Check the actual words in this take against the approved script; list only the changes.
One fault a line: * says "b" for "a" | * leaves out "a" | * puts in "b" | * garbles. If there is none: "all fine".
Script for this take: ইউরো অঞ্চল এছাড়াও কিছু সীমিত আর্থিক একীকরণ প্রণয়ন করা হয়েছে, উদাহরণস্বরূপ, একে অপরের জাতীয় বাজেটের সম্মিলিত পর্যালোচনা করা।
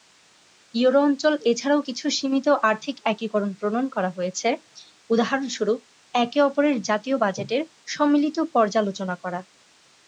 all fine